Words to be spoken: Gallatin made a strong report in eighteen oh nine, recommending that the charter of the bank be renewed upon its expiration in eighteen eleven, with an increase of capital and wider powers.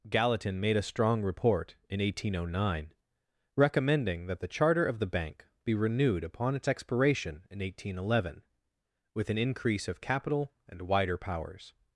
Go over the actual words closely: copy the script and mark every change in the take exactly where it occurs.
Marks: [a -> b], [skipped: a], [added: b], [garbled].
Gallatin made a strong report in eighteen oh nine, recommending that the charter of the bank be renewed upon its expiration in eighteen eleven, with an increase of capital and wider powers.